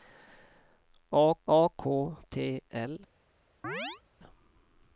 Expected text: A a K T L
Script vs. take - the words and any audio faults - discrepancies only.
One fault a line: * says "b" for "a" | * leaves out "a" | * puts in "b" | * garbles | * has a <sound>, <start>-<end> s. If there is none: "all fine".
* has a chirp, 3.6-4.0 s